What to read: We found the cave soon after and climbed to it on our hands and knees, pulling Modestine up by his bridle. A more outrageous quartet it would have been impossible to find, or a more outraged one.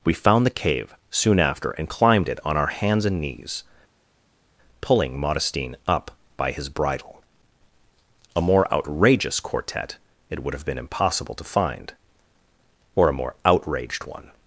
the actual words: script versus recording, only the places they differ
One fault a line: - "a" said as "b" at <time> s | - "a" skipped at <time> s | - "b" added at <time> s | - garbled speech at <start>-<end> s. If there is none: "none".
- "to" skipped at 2.3 s